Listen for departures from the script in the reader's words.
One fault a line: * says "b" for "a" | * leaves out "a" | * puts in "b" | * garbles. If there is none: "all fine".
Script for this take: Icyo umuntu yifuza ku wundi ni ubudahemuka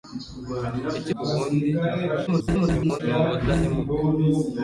* leaves out "umuntu yifuza"
* garbles